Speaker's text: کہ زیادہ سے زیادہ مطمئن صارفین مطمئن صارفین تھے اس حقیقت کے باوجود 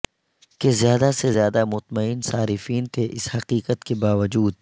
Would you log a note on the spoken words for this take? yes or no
yes